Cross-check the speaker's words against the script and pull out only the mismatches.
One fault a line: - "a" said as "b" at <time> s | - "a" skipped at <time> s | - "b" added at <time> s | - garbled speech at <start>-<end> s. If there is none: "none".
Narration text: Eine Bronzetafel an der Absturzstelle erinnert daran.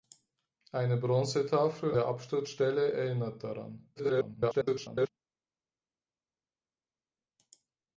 - "an" skipped at 1.9 s
- garbled speech at 4.0-5.1 s